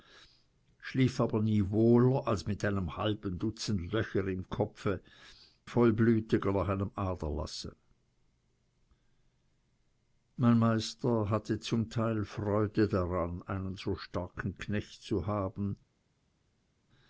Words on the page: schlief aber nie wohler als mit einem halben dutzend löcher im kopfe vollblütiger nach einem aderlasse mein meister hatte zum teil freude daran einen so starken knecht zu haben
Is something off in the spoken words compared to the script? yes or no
no